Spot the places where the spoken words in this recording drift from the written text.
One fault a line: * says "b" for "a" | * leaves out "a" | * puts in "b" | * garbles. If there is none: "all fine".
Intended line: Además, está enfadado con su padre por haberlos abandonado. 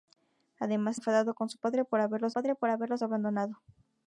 * leaves out "está"
* puts in "padre por haberlos"